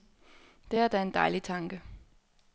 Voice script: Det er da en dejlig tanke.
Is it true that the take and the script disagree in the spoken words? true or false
false